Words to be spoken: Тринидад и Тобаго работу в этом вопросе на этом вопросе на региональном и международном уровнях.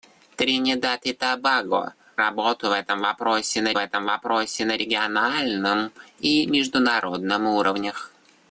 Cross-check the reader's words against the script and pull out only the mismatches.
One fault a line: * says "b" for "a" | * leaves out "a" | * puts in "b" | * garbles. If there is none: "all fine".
all fine